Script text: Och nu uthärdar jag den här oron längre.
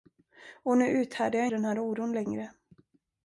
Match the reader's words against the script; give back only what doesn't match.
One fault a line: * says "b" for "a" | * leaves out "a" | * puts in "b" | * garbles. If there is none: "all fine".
all fine